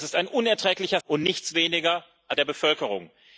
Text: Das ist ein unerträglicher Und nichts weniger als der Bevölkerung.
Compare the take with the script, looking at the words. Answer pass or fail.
pass